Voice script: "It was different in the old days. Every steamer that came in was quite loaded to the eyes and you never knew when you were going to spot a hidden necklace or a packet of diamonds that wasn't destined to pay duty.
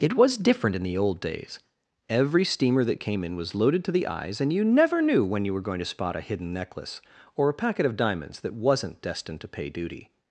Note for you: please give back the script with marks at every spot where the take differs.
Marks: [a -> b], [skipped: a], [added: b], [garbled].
"It was different in the old days. Every steamer that came in was [skipped: quite] loaded to the eyes and you never knew when you were going to spot a hidden necklace or a packet of diamonds that wasn't destined to pay duty.